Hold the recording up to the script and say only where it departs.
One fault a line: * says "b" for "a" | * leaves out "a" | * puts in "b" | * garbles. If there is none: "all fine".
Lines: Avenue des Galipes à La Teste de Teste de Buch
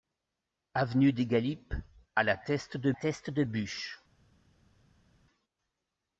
all fine